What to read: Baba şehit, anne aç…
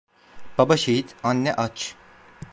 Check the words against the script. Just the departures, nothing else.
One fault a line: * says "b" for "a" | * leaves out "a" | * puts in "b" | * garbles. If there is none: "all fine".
all fine